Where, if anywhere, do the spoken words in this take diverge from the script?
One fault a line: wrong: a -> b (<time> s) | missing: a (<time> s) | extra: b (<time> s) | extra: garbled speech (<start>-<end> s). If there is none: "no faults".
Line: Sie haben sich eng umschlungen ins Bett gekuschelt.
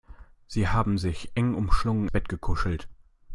missing: ins (2.1 s)